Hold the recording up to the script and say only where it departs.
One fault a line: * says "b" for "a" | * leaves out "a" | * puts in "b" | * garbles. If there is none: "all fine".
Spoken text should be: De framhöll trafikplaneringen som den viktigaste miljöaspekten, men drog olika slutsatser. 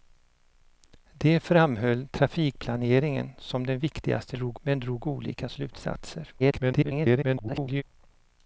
* says "drog" for "miljöaspekten"
* garbles